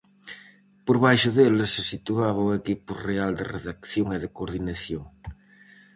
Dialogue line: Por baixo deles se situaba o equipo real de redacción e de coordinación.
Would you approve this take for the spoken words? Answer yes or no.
yes